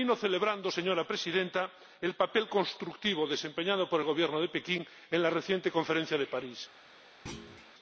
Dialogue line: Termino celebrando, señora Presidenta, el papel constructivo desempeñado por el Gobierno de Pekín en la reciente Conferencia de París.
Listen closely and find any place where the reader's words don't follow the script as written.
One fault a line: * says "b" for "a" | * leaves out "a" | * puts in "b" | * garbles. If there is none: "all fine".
all fine